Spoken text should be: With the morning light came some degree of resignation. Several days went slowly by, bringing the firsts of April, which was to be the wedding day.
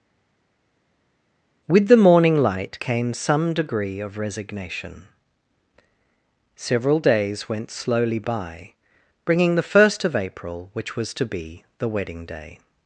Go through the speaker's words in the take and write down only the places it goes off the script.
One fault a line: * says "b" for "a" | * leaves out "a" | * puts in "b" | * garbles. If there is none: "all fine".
* says "first" for "firsts"